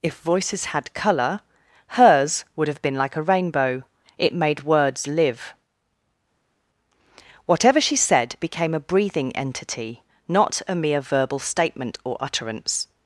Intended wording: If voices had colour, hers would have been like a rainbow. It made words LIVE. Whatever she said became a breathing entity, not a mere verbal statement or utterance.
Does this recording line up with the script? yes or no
yes